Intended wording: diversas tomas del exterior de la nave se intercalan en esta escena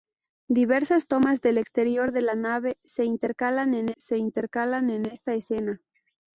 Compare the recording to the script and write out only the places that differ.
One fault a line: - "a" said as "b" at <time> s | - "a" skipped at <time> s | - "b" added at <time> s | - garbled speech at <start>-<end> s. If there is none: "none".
- "se intercalan en" added at 3.9 s